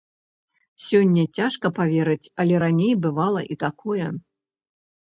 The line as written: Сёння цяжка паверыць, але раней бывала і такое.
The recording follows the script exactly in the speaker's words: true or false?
true